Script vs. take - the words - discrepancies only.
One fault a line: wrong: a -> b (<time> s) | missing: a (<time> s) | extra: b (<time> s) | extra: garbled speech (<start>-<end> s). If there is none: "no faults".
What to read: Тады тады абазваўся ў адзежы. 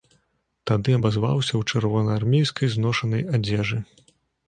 missing: тады (0.9 s)
extra: чырвонаармейскай зношанай (1.7 s)